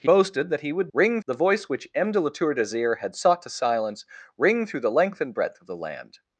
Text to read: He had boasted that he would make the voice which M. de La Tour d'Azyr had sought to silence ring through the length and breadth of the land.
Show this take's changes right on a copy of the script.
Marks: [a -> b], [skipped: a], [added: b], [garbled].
He [skipped: had] boasted that he would [make -> ring] the voice which M. de La Tour d'Azyr had sought to silence ring through the length and breadth of the land.